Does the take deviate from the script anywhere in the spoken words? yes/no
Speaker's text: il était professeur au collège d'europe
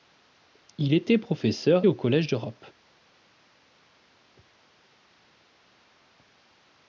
no